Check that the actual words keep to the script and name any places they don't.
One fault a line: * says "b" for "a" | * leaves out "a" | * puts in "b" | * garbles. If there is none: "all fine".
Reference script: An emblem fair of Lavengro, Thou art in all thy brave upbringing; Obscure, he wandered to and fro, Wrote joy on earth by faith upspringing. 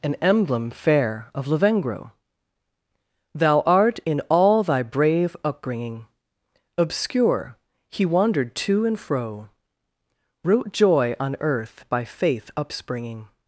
all fine